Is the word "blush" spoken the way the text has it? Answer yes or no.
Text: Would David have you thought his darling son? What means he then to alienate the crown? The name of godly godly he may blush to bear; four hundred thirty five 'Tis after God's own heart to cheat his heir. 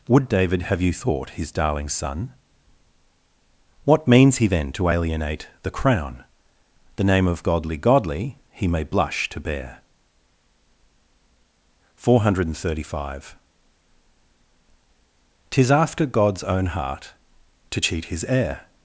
yes